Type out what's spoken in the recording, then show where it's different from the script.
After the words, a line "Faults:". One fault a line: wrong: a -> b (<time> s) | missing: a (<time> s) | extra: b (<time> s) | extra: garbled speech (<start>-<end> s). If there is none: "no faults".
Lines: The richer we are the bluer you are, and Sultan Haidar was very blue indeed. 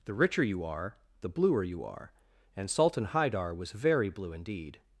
The richer you are the bluer you are, and Sultan Haidar was very blue indeed.
Faults:
wrong: we -> you (0.4 s)